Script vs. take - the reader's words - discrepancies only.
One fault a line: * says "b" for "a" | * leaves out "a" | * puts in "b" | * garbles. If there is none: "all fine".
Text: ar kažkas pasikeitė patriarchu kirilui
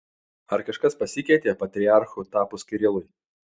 * puts in "tapus"